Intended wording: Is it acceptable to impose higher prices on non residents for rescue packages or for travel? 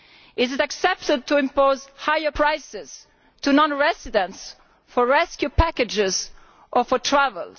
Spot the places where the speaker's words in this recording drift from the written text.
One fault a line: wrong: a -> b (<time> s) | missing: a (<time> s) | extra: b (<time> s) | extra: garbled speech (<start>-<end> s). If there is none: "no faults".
no faults